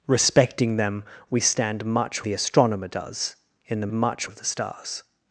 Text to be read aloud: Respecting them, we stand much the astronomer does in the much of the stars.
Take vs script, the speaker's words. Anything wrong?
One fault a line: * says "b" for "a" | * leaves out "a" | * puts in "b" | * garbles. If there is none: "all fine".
all fine